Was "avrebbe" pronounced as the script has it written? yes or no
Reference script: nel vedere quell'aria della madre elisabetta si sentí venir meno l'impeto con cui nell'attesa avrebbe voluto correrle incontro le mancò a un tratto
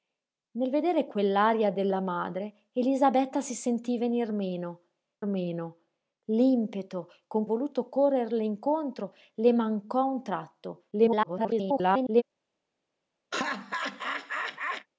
no